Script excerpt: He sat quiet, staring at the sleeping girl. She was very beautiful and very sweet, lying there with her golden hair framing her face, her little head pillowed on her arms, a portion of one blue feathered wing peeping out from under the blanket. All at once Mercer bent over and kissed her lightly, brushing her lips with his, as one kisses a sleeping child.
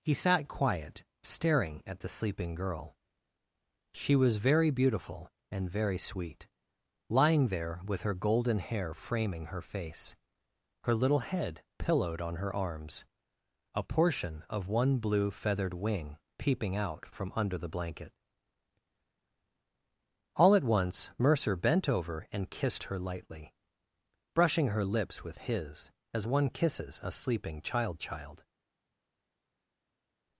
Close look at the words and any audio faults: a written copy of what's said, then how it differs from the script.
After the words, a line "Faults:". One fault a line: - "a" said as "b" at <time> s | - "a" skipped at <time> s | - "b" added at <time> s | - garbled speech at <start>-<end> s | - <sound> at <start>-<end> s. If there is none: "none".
He sat quiet, staring at the sleeping girl. She was very beautiful and very sweet, lying there with her golden hair framing her face, her little head pillowed on her arms, a portion of one blue feathered wing peeping out from under the blanket. All at once Mercer bent over and kissed her lightly, brushing her lips with his, as one kisses a sleeping child child.
Faults:
- "child" added at 28.0 s